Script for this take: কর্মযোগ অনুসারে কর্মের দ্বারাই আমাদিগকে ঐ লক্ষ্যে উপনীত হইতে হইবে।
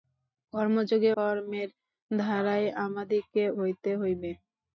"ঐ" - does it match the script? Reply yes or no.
no